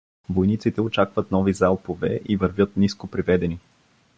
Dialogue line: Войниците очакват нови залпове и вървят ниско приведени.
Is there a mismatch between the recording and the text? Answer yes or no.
no